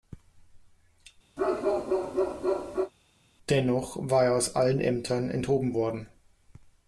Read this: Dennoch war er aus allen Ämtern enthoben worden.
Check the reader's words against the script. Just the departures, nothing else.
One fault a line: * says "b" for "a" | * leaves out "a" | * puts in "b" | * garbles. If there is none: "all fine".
all fine